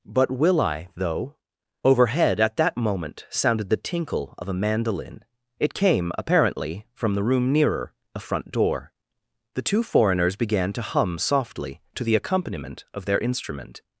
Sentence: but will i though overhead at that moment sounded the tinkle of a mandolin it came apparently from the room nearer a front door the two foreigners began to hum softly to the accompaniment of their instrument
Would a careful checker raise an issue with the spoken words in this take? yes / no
no